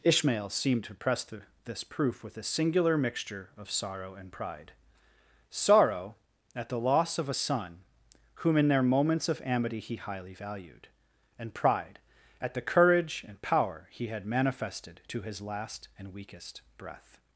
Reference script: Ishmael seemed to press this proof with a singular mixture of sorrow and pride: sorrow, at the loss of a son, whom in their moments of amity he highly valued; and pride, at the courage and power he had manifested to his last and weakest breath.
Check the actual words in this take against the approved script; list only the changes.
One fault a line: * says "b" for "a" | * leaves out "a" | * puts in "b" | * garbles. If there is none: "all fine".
* puts in "the"